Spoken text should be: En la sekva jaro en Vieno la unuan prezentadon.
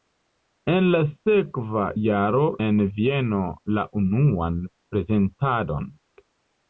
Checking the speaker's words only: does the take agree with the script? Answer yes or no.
yes